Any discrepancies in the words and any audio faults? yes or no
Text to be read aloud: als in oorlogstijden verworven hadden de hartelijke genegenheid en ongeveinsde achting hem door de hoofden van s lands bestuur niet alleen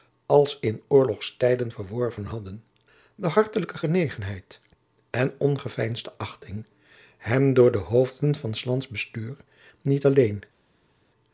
no